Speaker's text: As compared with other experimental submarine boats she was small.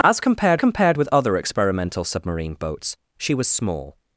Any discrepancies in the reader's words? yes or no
yes